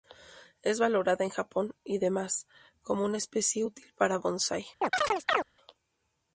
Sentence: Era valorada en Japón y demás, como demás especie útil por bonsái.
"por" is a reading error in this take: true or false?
true